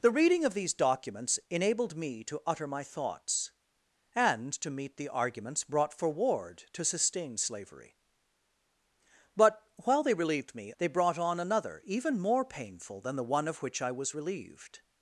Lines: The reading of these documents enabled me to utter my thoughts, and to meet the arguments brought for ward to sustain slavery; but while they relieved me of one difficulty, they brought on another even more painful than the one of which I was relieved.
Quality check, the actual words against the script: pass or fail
fail